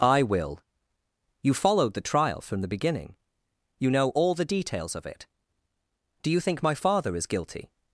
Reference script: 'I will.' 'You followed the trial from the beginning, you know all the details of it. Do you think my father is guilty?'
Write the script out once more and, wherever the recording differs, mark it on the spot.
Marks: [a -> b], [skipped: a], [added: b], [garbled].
'I will.' 'You followed the trial from the beginning, you know all the details of it. Do you think my father is guilty?'